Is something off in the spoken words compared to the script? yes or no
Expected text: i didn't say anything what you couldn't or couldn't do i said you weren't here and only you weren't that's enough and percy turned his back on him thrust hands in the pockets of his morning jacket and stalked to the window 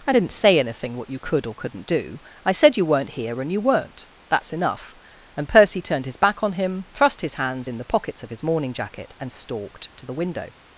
yes